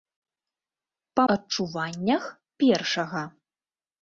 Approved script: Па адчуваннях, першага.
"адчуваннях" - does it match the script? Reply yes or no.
yes